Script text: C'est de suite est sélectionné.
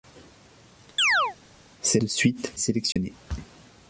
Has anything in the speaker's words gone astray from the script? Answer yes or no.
no